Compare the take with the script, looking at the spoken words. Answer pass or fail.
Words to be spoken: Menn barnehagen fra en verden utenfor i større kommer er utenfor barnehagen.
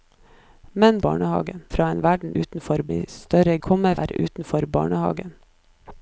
pass